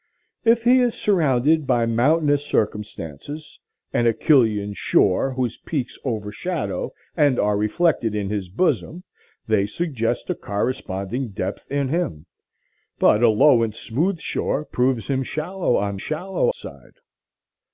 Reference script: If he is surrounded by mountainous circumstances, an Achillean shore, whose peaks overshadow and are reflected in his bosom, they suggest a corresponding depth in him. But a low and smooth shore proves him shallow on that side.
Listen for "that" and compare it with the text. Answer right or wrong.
wrong